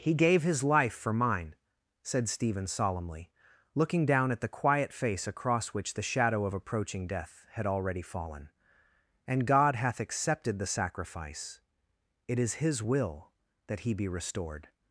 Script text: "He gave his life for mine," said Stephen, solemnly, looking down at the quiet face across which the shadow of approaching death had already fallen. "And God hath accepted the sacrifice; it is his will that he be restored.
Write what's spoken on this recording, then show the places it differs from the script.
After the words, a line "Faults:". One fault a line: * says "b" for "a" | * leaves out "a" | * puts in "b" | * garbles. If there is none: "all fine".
"He gave his life for mine," said Stephen, solemnly, looking down at the quiet face across which the shadow of approaching death had already fallen. "And God hath accepted the sacrifice; it is his will that he be restored.
Faults:
all fine